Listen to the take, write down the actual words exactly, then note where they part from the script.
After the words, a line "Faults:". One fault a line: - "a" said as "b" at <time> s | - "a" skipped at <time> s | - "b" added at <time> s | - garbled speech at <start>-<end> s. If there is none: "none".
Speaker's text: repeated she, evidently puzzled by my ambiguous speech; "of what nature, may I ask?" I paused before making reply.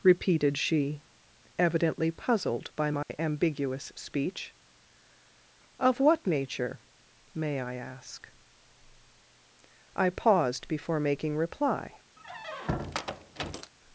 repeated she, evidently puzzled by my ambiguous speech; "of what nature, may I ask?" I paused before making reply.
Faults:
none